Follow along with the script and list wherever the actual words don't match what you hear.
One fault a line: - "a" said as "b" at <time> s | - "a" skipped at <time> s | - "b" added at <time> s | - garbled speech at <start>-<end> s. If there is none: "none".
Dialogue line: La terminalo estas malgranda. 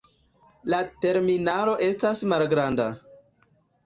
none